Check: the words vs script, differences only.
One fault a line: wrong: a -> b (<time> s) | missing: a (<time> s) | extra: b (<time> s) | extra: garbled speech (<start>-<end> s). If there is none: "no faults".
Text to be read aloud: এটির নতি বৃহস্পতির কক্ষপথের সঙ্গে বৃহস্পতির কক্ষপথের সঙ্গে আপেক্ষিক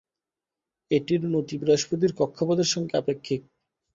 missing: বৃহস্পতির কক্ষপথের সঙ্গে (2.9 s)